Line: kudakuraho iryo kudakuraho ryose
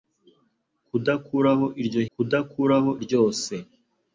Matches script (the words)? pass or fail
pass